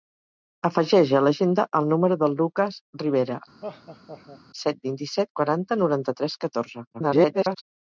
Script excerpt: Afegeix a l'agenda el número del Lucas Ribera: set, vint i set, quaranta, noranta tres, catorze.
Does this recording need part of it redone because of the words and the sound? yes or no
yes